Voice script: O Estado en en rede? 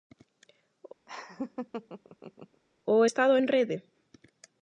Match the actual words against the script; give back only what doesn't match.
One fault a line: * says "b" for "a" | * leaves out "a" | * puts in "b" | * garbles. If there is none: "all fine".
* leaves out "en"